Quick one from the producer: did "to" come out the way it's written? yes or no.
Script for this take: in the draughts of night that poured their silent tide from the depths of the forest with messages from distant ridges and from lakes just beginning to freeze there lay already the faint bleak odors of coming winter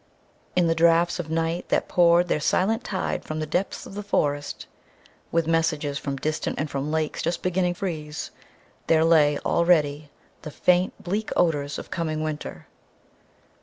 no